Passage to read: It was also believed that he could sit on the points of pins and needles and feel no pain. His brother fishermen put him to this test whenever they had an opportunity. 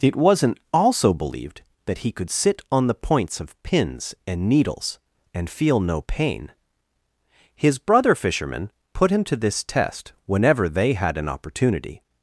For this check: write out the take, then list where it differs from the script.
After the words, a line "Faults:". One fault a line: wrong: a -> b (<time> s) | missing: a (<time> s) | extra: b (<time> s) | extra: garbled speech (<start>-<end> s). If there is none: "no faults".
It wasn't also believed that he could sit on the points of pins and needles and feel no pain. His brother fishermen put him to this test whenever they had an opportunity.
Faults:
wrong: was -> wasn't (0.1 s)